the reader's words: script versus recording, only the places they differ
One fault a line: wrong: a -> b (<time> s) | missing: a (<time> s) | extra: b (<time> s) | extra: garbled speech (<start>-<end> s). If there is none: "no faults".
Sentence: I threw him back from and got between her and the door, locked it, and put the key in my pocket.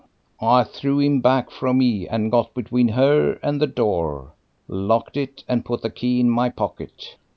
extra: me (1.8 s)